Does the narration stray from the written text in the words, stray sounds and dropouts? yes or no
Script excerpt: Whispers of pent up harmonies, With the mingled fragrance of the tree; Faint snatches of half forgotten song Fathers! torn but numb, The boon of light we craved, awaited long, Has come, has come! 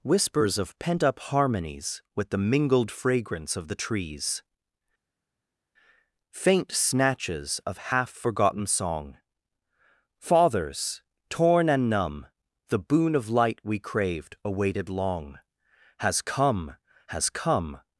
yes